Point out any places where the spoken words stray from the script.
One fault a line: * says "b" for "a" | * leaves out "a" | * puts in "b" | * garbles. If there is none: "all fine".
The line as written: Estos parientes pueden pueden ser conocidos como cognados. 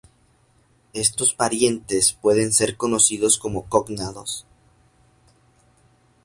* leaves out "pueden"